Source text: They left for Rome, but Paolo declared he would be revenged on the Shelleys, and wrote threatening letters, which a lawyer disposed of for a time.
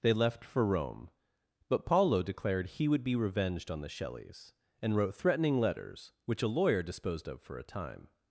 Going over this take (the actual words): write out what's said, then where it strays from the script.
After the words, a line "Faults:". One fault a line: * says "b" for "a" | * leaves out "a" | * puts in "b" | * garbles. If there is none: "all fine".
They left for Rome, but Paolo declared he would be revenged on the Shelleys, and wrote threatening letters, which a lawyer disposed of for a time.
Faults:
all fine